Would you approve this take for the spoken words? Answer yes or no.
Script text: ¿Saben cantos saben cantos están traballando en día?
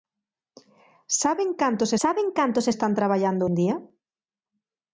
yes